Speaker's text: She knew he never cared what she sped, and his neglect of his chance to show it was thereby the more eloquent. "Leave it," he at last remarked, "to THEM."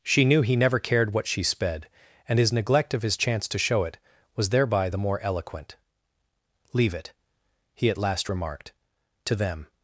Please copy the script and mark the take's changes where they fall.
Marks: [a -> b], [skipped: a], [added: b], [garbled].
She knew he never cared what she sped, and his neglect of his chance to show it was thereby the more eloquent. "Leave it," he at last remarked, "to THEM."